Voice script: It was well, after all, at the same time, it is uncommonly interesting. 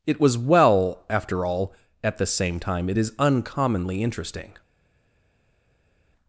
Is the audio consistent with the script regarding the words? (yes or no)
yes